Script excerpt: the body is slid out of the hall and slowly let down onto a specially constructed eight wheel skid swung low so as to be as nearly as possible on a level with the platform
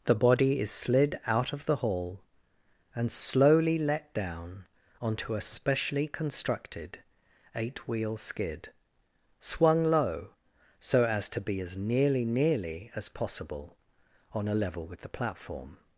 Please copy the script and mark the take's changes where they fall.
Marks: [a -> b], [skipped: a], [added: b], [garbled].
the body is slid out of the hall and slowly let down onto a specially constructed eight wheel skid swung low so as to be as nearly [added: nearly] as possible on a level with the platform